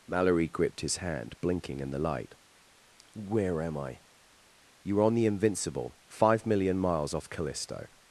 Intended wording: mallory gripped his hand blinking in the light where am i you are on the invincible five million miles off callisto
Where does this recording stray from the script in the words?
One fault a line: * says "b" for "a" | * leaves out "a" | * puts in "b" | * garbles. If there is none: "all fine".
all fine